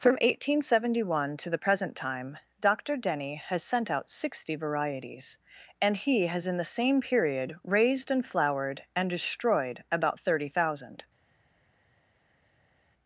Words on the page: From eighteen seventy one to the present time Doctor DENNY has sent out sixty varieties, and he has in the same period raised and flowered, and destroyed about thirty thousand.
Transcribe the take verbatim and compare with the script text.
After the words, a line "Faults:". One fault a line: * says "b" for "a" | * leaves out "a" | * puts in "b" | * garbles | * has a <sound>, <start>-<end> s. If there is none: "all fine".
From eighteen seventy one to the present time Doctor DENNY has sent out sixty varieties, and he has in the same period raised and flowered, and destroyed about thirty thousand.
Faults:
all fine